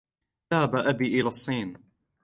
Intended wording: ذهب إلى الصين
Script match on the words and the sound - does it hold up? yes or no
no